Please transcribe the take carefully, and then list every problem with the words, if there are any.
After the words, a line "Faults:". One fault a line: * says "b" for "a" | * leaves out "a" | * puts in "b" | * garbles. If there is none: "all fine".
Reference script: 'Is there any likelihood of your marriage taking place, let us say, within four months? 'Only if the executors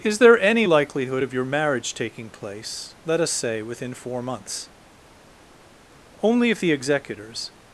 'Is there any likelihood of your marriage taking place, let us say, within four months? 'Only if the executors
Faults:
all fine